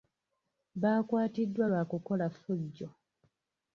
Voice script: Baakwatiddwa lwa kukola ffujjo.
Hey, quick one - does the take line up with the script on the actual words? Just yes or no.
yes